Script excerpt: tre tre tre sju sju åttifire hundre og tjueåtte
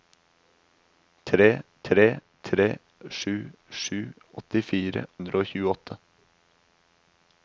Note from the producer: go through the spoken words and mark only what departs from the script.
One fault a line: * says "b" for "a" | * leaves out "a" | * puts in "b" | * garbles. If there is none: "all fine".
all fine